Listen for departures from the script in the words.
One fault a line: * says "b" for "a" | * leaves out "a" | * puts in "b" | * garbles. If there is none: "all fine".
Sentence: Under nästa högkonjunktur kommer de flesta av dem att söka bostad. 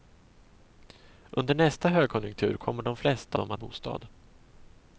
* leaves out "av"
* leaves out "söka"